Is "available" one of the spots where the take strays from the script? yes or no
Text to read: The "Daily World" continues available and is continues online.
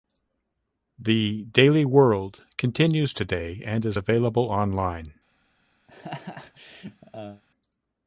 yes